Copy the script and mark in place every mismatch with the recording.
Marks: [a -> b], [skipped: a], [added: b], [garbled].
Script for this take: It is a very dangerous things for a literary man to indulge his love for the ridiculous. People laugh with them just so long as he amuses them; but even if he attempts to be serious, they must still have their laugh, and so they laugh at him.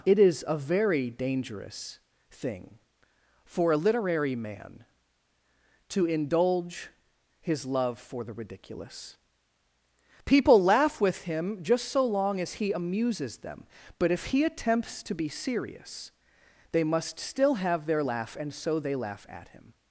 It is a very dangerous [things -> thing] for a literary man to indulge his love for the ridiculous. People laugh with [them -> him] just so long as he amuses them; but [skipped: even] if he attempts to be serious, they must still have their laugh, and so they laugh at him.